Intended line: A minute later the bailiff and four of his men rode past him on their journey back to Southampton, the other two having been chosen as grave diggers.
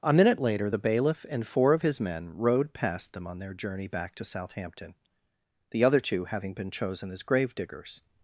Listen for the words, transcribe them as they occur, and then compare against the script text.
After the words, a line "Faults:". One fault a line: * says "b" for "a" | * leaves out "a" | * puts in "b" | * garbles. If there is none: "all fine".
A minute later the bailiff and four of his men rode past them on their journey back to Southampton, the other two having been chosen as grave diggers.
Faults:
* says "them" for "him"